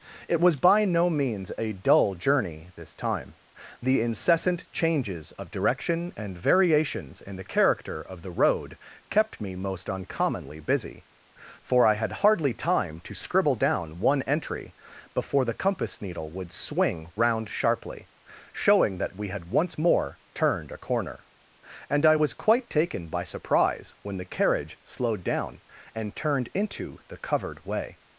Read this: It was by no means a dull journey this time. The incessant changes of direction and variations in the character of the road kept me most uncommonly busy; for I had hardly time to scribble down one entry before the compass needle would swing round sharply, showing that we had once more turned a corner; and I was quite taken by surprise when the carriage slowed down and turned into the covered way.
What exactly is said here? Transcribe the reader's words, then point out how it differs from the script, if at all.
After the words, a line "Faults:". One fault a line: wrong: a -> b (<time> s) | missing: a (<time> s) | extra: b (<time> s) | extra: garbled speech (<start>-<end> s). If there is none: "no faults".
It was by no means a dull journey this time. The incessant changes of direction and variations in the character of the road kept me most uncommonly busy; for I had hardly time to scribble down one entry before the compass needle would swing round sharply, showing that we had once more turned a corner; and I was quite taken by surprise when the carriage slowed down and turned into the covered way.
Faults:
no faults